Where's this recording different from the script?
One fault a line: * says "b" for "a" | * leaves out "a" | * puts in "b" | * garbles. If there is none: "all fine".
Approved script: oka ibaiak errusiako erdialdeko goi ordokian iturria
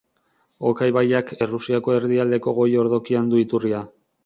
* puts in "du"